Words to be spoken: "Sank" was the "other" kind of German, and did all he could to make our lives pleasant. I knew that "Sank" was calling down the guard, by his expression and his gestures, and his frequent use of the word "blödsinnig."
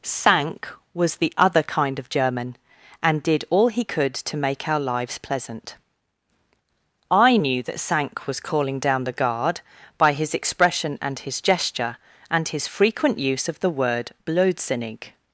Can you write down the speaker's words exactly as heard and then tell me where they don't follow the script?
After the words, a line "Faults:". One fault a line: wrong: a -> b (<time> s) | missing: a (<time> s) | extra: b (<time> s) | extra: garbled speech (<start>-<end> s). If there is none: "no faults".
"Sank" was the "other" kind of German, and did all he could to make our lives pleasant. I knew that "Sank" was calling down the guard, by his expression and his gesture, and his frequent use of the word "blödsinnig."
Faults:
wrong: gestures -> gesture (11.4 s)